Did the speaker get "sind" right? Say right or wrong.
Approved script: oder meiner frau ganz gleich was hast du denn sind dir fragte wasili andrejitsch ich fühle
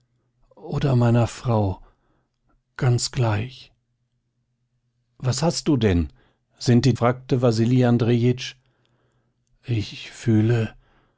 right